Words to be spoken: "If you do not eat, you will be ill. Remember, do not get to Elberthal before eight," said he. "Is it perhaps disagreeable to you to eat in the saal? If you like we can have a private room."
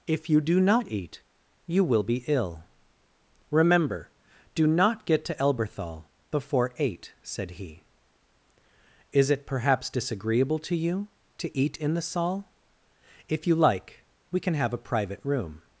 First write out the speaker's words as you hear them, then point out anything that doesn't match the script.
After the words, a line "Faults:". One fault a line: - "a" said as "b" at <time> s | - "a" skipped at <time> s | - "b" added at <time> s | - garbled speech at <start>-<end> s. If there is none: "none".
"If you do not eat, you will be ill. Remember, do not get to Elberthal before eight," said he. "Is it perhaps disagreeable to you to eat in the saal? If you like we can have a private room."
Faults:
none